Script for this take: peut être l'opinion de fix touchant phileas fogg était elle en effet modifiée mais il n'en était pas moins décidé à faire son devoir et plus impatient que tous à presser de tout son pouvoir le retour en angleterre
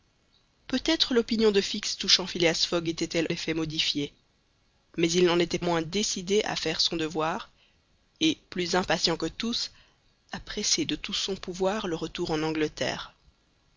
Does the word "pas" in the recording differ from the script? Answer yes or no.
yes